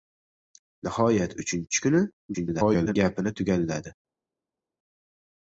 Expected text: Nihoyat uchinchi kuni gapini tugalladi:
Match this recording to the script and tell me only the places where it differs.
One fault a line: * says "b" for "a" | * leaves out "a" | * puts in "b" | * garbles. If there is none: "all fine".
* garbles